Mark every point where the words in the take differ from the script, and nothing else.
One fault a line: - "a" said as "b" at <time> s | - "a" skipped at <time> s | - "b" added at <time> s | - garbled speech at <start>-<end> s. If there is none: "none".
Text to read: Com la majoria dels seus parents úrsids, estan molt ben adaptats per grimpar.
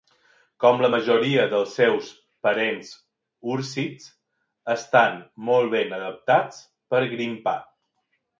none